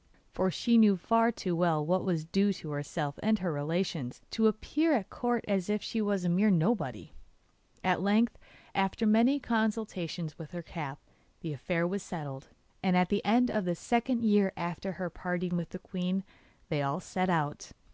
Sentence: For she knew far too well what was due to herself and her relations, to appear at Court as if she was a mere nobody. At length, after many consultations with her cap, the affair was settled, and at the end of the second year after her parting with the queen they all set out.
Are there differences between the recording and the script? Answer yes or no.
no